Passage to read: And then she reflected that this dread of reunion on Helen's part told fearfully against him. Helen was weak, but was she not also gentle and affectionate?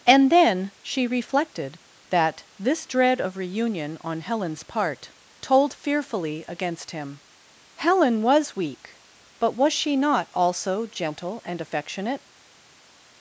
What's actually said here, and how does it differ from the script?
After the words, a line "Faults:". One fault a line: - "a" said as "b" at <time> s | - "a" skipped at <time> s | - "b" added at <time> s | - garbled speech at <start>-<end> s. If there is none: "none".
And then she reflected that this dread of reunion on Helen's part told fearfully against him. Helen was weak, but was she not also gentle and affectionate?
Faults:
none